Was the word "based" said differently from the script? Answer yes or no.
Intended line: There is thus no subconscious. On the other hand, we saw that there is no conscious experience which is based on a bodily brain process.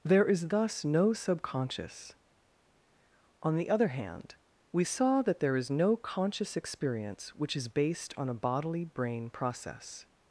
no